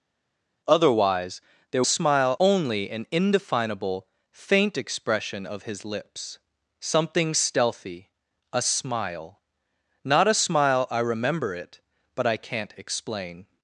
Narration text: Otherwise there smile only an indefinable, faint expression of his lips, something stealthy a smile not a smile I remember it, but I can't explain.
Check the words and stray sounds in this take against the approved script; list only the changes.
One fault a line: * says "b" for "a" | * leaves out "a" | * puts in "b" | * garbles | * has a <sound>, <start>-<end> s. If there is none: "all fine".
all fine